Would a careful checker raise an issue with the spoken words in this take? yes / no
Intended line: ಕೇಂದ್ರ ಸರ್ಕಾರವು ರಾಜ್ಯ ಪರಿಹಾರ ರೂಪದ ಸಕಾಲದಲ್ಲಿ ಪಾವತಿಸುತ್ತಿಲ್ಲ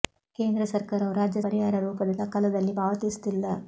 no